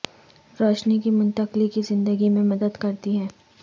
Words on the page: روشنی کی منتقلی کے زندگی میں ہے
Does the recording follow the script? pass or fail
fail